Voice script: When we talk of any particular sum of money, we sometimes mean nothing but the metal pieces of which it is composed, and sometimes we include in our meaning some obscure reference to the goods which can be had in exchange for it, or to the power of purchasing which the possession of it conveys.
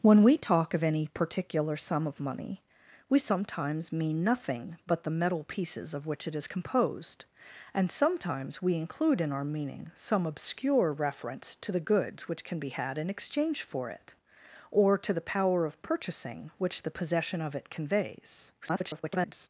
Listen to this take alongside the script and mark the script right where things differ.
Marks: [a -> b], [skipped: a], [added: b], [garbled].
When we talk of any particular sum of money, we sometimes mean nothing but the metal pieces of which it is composed, and sometimes we include in our meaning some obscure reference to the goods which can be had in exchange for it, or to the power of purchasing which the possession of it conveys. [garbled]